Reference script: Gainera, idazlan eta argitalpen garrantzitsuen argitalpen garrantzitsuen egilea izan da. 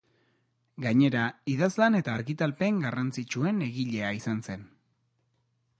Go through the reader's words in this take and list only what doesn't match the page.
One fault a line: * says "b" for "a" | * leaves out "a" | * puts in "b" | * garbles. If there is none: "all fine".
* leaves out "argitalpen garrantzitsuen"
* says "zen" for "da"